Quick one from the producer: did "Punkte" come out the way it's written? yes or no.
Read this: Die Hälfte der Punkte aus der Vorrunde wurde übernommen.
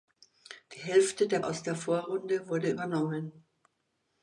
no